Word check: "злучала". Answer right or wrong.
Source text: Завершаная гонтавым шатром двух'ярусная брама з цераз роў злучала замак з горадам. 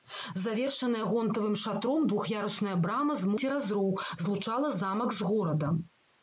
right